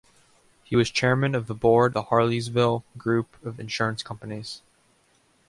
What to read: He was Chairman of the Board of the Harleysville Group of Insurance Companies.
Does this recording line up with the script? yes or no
no